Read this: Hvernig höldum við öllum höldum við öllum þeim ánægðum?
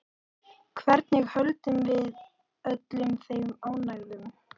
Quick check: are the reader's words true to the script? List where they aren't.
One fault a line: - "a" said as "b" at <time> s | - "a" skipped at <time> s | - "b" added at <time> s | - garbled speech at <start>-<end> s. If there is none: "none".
- "höldum við öllum" skipped at 3.1 s